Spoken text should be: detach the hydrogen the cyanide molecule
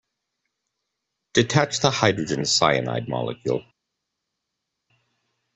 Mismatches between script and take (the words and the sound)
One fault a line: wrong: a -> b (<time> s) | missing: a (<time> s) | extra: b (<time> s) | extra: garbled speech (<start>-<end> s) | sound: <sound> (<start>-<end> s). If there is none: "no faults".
no faults